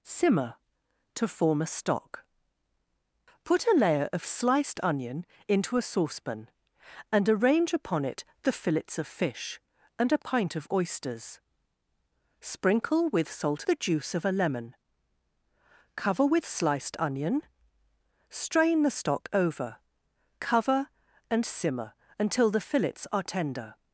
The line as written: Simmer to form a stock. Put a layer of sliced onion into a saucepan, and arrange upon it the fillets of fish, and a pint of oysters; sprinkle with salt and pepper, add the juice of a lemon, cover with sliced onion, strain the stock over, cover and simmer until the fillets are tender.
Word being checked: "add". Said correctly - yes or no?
no